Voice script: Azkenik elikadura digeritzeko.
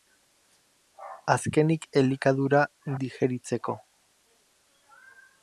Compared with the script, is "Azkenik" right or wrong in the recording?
right